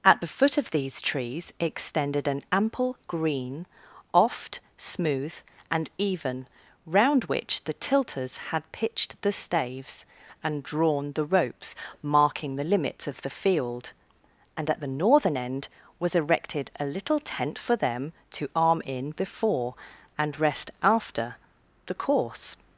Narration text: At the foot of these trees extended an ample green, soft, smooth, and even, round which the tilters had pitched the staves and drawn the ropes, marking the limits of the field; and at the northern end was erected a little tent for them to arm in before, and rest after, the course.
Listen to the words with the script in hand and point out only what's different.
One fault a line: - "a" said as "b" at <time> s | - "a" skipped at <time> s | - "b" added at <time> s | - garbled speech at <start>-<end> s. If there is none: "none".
- "soft" said as "oft" at 4.1 s